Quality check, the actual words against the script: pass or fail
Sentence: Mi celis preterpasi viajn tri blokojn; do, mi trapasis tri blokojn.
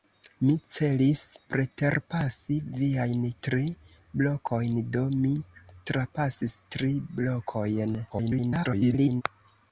fail